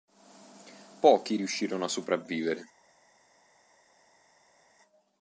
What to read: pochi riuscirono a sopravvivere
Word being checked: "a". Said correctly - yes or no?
yes